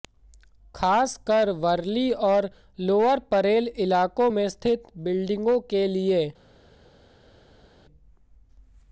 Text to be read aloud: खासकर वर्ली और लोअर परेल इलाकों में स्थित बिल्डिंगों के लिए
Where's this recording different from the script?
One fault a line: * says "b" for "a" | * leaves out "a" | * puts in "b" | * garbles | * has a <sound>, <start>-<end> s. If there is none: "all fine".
all fine